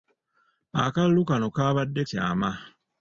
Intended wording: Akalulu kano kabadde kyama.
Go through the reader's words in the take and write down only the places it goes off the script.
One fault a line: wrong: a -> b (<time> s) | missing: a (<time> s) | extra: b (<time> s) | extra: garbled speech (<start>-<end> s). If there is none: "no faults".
no faults